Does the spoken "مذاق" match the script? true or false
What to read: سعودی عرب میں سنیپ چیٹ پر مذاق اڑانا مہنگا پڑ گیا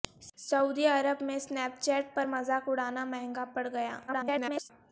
true